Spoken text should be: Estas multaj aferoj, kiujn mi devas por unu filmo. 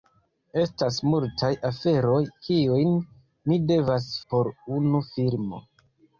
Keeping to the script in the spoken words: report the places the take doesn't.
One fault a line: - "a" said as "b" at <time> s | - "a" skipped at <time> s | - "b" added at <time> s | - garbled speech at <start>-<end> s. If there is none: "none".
none